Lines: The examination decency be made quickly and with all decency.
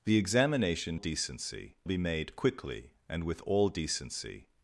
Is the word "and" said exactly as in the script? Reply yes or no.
yes